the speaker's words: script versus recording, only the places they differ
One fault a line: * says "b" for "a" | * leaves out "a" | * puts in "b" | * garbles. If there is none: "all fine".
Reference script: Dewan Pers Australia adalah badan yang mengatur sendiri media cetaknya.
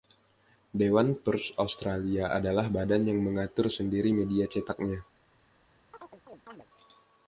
all fine